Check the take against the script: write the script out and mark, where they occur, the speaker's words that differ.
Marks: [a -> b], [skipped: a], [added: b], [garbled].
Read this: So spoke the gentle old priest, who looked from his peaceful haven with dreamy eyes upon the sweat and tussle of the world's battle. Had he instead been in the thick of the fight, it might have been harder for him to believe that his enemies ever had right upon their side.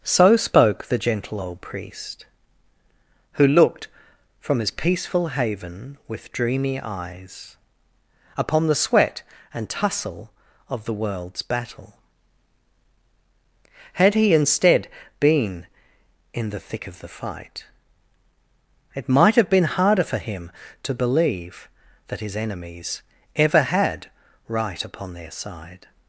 So spoke the gentle old priest, who looked from his peaceful haven with dreamy eyes upon the sweat and tussle of the world's battle. Had he instead been in the thick of the fight, it might have been harder for him to believe that his enemies ever had right upon their side.